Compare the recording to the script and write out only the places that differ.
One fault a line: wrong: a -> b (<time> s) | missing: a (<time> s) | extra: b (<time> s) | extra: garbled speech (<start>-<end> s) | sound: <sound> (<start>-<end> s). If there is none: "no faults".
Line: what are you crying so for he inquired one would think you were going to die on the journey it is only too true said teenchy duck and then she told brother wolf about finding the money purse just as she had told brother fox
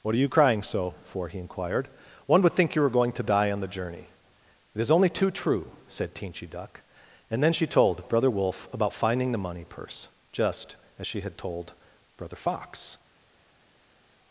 no faults